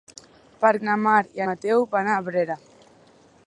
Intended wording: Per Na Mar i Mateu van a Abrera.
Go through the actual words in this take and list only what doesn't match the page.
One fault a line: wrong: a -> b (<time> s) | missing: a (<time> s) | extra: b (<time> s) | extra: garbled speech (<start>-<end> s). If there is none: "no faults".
no faults